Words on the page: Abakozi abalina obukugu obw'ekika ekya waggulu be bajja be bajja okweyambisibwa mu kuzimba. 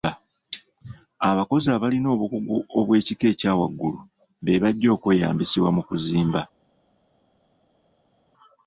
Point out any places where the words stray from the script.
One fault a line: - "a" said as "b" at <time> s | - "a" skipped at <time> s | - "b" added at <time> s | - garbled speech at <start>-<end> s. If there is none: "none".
- "be bajja" skipped at 4.9 s